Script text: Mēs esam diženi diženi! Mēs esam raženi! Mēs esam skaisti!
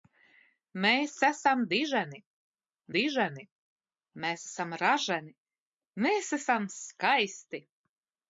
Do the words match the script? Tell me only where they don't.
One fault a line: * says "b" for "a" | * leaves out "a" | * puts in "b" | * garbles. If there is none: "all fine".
all fine